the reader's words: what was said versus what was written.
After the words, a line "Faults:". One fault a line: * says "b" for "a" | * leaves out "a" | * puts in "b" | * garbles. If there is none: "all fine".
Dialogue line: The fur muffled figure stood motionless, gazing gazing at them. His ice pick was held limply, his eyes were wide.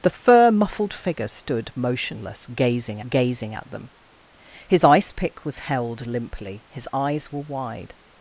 The fur muffled figure stood motionless, gazing gazing at them. His ice pick was held limply, his eyes were wide.
Faults:
all fine